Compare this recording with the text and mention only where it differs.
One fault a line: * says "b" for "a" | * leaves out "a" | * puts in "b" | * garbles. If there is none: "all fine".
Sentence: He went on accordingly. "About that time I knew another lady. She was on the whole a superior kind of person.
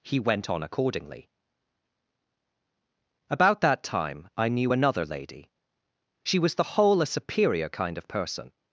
* leaves out "on"